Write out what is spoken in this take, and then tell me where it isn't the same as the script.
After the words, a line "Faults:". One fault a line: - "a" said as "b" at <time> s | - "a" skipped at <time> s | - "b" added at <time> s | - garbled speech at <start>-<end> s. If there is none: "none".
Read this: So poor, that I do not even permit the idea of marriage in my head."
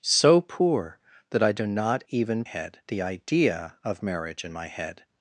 So poor, that I do not even head the idea of marriage in my head."
Faults:
- "permit" said as "head" at 2.4 s